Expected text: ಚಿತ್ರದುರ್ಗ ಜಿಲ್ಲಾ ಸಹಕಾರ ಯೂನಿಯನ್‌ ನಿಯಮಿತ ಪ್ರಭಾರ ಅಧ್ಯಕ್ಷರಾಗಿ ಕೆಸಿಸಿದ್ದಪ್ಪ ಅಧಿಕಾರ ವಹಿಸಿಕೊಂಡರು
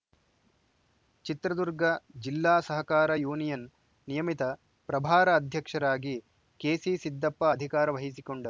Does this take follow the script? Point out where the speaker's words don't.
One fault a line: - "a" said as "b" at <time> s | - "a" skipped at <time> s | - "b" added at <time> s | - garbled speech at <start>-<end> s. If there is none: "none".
none